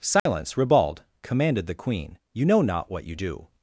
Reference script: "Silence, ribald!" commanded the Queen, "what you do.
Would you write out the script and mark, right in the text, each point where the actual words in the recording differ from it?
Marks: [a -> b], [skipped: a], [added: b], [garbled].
"Silence, ribald!" commanded the Queen, [added: you know not] "what you do.